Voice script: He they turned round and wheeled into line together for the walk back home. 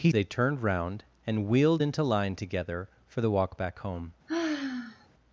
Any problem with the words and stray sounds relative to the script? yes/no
yes